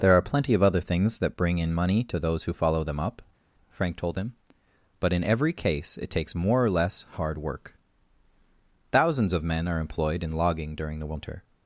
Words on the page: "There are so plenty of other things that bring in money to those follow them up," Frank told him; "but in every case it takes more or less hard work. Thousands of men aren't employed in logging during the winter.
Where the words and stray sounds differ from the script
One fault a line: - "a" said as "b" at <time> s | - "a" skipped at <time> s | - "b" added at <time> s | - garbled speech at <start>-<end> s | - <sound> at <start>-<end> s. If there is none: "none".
- "so" skipped at 0.2 s
- "who" added at 2.5 s
- "aren't" said as "are" at 9.7 s